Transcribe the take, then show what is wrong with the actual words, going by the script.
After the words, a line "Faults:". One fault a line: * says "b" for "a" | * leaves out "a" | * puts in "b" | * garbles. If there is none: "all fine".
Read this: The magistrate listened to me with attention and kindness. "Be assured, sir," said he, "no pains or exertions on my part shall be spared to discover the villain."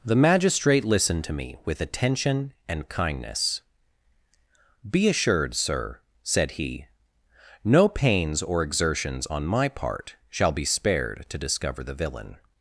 The magistrate listened to me with attention and kindness. "Be assured, sir," said he, "no pains or exertions on my part shall be spared to discover the villain."
Faults:
all fine